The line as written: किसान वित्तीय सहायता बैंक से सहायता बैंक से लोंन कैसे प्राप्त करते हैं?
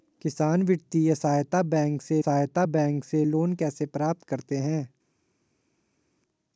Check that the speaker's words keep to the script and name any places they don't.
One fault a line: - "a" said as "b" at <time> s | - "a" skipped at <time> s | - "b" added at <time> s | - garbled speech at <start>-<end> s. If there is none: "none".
none